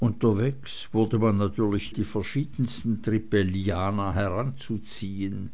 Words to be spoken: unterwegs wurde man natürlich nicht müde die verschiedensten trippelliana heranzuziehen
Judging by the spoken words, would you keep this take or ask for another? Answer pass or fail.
fail